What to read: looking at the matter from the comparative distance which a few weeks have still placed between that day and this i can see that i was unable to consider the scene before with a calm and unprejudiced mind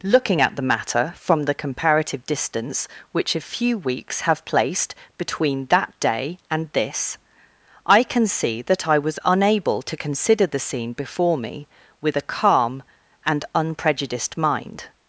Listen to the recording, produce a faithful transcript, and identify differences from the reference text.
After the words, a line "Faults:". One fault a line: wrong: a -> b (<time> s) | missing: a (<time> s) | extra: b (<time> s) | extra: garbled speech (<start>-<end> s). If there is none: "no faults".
looking at the matter from the comparative distance which a few weeks have placed between that day and this i can see that i was unable to consider the scene before me with a calm and unprejudiced mind
Faults:
missing: still (4.5 s)
extra: me (11.4 s)